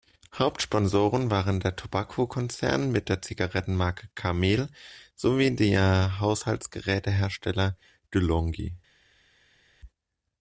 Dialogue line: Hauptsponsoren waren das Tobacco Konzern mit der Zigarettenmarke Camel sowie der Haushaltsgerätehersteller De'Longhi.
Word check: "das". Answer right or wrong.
wrong